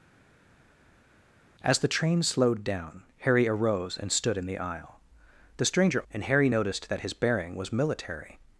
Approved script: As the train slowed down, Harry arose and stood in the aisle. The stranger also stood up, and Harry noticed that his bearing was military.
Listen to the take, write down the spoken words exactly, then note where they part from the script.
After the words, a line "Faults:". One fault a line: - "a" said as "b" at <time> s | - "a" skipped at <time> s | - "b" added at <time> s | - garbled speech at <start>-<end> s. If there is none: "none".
As the train slowed down, Harry arose and stood in the aisle. The stranger and Harry noticed that his bearing was military.
Faults:
- "also stood up" skipped at 6.0 s